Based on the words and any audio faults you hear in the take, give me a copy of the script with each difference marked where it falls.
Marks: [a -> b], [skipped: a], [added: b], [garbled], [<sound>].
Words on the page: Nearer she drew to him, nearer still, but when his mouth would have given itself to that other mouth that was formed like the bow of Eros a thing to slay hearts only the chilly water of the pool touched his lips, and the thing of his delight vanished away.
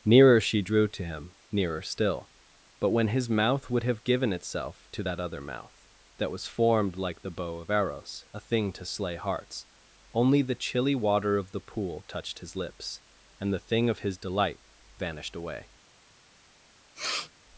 Nearer she drew to him, nearer still, but when his mouth would have given itself to that other mouth that was formed like the bow of Eros a thing to slay hearts only the chilly water of the pool touched his lips, and the thing of his delight vanished away. [sniff]